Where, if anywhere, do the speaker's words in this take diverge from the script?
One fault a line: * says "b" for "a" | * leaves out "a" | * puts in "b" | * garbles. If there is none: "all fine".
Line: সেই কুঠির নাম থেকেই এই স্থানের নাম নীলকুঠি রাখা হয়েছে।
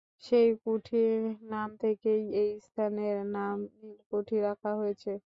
all fine